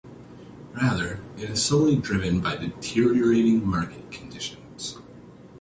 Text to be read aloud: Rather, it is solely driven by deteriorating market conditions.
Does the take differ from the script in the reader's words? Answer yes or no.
no